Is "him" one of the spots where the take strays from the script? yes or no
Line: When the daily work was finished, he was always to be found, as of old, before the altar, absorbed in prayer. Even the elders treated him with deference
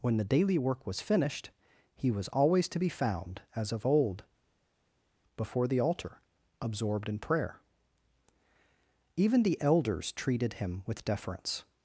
no